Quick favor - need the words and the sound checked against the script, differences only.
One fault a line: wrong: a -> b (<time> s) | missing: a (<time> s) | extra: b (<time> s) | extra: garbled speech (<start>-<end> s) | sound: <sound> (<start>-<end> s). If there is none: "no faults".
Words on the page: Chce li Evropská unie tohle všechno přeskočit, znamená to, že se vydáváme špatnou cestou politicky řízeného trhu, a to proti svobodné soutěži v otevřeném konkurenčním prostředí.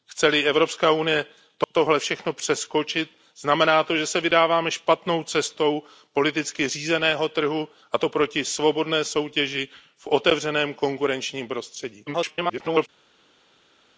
extra: garbled speech (12.1-12.9 s)